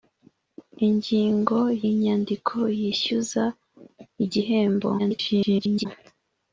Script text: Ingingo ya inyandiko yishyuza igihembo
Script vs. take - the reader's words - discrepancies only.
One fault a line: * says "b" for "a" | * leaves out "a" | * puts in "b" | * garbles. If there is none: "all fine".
* leaves out "ya"
* garbles